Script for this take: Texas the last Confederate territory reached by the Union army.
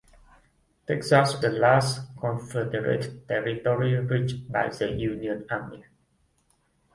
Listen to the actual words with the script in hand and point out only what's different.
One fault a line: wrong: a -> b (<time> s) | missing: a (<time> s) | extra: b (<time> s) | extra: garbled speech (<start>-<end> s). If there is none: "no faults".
no faults